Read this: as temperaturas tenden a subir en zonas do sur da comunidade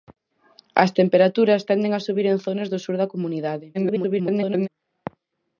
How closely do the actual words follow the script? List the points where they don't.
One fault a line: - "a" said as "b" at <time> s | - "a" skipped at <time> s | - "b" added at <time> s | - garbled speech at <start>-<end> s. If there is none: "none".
- garbled speech at 3.7-4.7 s